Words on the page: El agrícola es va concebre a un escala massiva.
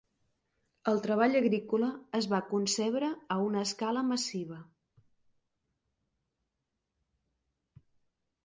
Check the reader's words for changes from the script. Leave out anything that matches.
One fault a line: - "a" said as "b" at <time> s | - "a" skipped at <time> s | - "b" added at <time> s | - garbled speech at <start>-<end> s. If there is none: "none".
- "treball" added at 1.0 s
- "un" said as "una" at 3.5 s